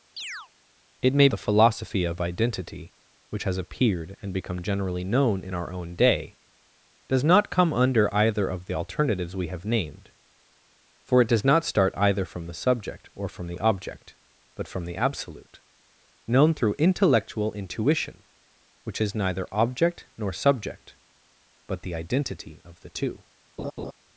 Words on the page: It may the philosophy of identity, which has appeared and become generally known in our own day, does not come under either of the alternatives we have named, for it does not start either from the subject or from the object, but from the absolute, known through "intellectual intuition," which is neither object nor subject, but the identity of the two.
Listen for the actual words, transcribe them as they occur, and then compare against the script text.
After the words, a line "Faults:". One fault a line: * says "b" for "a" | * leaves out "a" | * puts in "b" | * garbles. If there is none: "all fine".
It may the philosophy of identity, which has appeared and become generally known in our own day, does not come under either of the alternatives we have named, for it does not start either from the subject or from the object, but from the absolute, known through "intellectual intuition," which is neither object nor subject, but the identity of the two.
Faults:
all fine